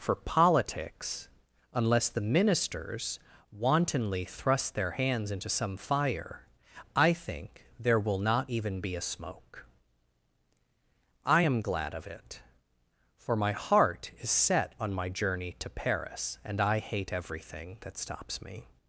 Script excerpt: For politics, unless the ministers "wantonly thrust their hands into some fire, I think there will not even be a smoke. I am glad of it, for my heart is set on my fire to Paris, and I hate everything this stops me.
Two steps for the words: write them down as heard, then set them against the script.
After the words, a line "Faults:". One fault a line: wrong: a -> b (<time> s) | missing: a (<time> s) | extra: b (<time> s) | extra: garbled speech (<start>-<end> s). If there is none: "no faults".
For politics, unless the ministers "wantonly thrust their hands into some fire, I think there will not even be a smoke. I am glad of it, for my heart is set on my journey to Paris, and I hate everything that stops me.
Faults:
wrong: fire -> journey (15.1 s)
wrong: this -> that (17.8 s)